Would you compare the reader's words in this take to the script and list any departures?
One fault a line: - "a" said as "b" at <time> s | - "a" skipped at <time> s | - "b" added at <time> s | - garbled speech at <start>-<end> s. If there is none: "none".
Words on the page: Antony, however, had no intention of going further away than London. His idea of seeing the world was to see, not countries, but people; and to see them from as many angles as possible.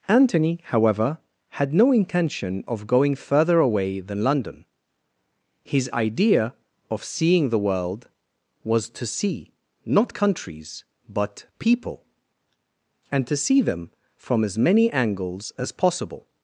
none